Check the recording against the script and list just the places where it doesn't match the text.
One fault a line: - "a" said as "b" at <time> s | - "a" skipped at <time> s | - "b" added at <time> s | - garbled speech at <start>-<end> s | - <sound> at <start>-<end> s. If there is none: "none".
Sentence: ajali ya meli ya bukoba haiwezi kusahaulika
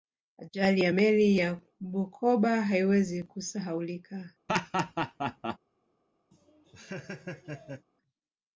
- laugh at 4.5-5.6 s
- laugh at 6.3-7.9 s